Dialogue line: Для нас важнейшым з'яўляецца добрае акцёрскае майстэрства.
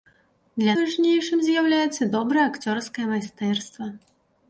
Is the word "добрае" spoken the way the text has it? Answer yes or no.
yes